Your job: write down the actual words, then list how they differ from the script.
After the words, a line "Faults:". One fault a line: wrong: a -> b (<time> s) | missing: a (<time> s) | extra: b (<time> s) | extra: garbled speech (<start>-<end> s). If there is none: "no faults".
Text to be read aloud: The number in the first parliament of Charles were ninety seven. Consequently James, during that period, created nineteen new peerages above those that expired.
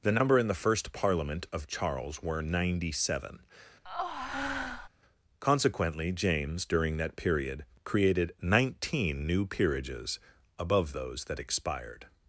The number in the first parliament of Charles were ninety seven. Consequently James, during that period, created nineteen new peerages above those that expired.
Faults:
no faults